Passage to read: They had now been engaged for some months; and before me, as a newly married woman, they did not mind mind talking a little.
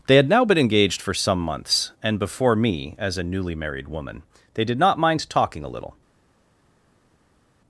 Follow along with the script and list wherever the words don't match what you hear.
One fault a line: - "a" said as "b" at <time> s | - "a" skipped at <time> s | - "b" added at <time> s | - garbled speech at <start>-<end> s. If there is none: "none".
- "mind" skipped at 5.3 s